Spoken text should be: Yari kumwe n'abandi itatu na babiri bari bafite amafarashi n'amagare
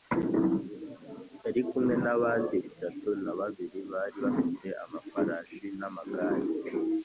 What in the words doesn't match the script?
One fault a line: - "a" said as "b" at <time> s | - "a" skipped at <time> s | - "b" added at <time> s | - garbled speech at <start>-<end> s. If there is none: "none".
none